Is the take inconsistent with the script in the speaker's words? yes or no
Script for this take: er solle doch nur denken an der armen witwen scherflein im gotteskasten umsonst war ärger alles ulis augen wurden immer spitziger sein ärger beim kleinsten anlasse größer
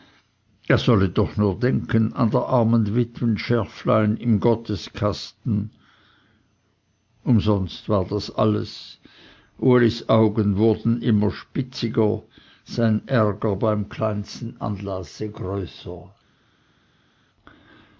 yes